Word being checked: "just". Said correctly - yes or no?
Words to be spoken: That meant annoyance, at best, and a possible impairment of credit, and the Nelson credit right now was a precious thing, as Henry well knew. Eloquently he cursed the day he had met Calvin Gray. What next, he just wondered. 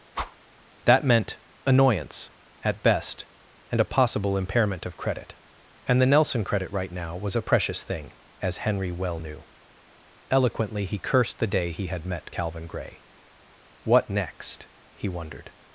no